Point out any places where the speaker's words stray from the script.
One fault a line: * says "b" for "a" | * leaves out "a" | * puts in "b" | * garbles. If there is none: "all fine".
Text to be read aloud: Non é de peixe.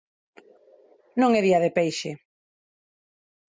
* puts in "día"